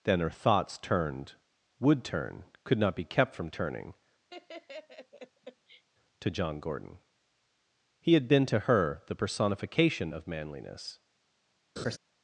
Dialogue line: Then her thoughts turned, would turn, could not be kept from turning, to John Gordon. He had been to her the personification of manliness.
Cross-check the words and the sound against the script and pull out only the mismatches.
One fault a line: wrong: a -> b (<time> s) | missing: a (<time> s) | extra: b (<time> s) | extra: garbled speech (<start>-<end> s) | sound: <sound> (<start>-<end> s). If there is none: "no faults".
sound: laugh (4.3-5.8 s)
sound: laugh (11.8-12.0 s)